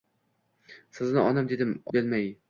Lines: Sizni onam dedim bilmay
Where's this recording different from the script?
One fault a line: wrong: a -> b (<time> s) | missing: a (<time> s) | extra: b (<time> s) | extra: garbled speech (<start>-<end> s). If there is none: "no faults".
no faults